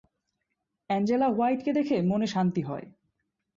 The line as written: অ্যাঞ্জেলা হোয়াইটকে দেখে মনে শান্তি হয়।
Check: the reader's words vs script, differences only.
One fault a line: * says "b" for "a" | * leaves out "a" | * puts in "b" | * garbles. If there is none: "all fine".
all fine